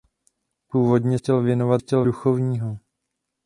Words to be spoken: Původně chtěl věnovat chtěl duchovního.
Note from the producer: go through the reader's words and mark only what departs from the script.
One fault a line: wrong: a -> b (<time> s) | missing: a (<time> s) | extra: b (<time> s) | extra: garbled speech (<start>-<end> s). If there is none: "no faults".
no faults